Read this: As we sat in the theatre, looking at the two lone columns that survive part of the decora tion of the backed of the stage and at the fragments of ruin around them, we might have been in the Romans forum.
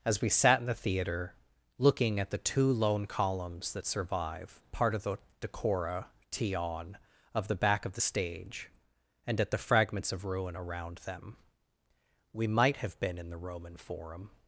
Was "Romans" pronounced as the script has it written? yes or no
no